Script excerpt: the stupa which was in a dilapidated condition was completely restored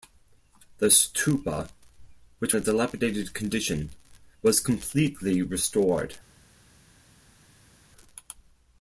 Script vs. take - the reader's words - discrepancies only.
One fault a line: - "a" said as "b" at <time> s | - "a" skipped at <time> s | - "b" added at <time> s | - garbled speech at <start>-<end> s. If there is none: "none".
- "was in" skipped at 2.6 s